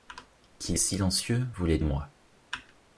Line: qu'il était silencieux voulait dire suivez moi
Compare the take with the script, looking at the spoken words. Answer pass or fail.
fail